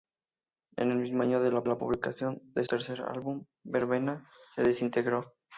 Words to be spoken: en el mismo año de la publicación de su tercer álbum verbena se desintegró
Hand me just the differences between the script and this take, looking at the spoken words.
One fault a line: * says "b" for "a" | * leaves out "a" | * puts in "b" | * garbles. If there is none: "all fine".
* puts in "la"
* leaves out "su"